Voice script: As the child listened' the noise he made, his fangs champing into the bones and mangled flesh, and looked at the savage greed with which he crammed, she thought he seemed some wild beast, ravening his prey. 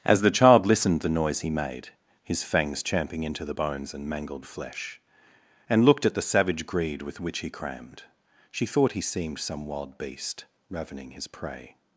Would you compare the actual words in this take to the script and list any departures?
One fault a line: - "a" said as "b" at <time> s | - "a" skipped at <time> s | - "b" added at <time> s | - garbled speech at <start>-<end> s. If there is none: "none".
none